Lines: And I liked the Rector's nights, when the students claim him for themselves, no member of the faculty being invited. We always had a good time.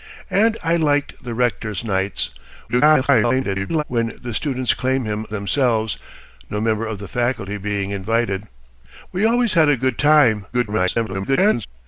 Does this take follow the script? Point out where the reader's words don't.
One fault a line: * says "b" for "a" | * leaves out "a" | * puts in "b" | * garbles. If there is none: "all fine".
* garbles
* leaves out "for"
* garbles